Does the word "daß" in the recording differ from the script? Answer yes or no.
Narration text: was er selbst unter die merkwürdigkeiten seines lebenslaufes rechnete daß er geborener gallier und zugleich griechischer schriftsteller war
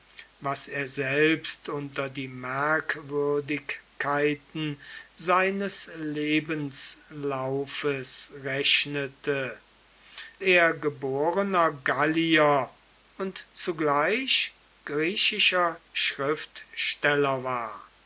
yes